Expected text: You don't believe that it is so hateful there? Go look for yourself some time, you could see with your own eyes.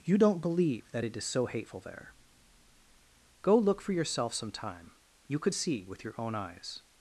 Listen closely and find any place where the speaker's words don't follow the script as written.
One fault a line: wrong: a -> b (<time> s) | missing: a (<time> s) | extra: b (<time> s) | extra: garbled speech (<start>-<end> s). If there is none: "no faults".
no faults